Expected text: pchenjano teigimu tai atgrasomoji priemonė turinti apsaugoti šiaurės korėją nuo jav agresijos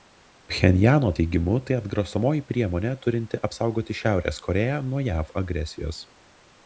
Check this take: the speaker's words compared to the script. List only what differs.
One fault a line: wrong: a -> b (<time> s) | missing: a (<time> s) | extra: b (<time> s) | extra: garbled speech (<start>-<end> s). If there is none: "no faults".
no faults